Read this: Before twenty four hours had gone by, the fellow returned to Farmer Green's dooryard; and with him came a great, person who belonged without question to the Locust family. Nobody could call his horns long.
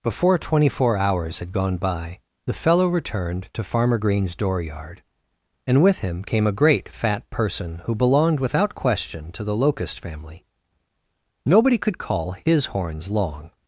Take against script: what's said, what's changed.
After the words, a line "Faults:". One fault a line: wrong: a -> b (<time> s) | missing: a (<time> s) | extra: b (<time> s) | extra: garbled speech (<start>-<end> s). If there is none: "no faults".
Before twenty four hours had gone by, the fellow returned to Farmer Green's dooryard; and with him came a great, fat person who belonged without question to the Locust family. Nobody could call his horns long.
Faults:
extra: fat (6.9 s)